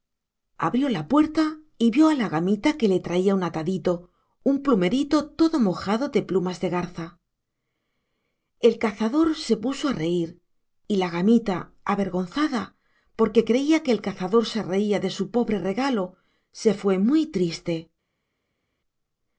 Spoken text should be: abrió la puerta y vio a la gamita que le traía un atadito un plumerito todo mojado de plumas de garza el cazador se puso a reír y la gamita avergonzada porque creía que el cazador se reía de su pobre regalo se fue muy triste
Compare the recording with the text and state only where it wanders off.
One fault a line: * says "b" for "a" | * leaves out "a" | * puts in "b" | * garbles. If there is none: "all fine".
all fine